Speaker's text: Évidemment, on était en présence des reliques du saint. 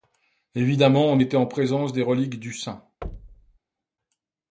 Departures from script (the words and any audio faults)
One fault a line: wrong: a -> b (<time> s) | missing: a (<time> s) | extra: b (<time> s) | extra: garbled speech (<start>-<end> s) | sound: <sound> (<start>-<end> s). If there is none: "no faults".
sound: thud (3.0-3.6 s)